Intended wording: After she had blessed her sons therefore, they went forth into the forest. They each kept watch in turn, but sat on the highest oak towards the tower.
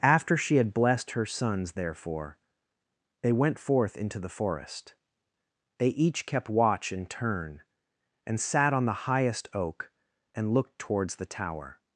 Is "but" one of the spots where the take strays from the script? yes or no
yes